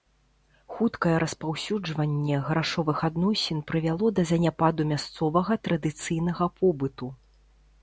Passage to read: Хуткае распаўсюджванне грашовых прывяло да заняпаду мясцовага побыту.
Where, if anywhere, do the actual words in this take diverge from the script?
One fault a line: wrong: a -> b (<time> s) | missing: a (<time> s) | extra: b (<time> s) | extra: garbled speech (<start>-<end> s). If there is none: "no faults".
extra: адносін (3.1 s)
extra: традыцыйнага (5.7 s)